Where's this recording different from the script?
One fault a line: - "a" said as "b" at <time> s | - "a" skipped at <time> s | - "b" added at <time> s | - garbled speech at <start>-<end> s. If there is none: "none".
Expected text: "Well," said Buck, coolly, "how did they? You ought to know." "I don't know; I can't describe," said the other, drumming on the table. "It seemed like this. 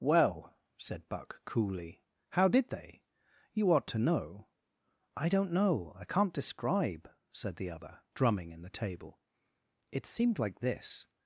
- "on" said as "in" at 8.5 s